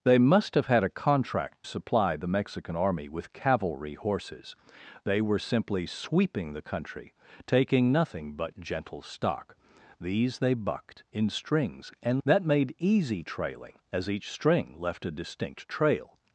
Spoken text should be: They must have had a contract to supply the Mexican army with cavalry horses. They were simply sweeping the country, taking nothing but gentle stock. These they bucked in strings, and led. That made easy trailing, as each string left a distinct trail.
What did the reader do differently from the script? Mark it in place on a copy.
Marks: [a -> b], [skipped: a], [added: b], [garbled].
They must have had a contract [skipped: to] supply the Mexican army with cavalry horses. They were simply sweeping the country, taking nothing but gentle stock. These they bucked in strings, and [skipped: led.] That made easy trailing, as each string left a distinct trail.